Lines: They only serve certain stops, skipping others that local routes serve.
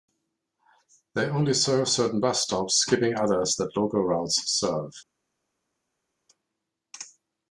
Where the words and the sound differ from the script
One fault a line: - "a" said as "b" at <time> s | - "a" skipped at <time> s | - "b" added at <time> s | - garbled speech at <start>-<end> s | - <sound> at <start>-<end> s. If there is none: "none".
- "bus" added at 2.2 s